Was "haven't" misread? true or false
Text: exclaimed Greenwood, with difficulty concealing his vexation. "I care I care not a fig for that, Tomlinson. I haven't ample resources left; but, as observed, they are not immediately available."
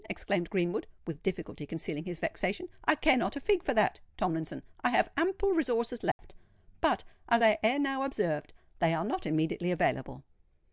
true